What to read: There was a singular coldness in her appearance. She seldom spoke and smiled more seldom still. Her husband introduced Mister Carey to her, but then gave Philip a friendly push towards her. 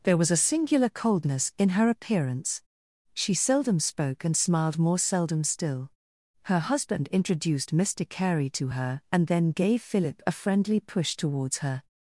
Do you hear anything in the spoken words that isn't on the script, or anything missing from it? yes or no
yes